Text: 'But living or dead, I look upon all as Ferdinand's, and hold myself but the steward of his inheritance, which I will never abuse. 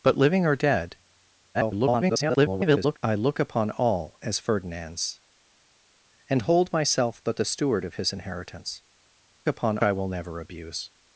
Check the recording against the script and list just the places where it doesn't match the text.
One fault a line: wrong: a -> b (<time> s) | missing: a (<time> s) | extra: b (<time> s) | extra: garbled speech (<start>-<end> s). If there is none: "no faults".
extra: garbled speech (1.5-3.0 s)
wrong: which -> upon (9.5 s)